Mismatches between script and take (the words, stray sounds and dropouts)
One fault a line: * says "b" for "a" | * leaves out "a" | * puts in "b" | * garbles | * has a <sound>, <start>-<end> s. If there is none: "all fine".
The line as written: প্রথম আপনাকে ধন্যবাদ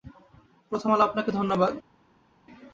* puts in "আলো"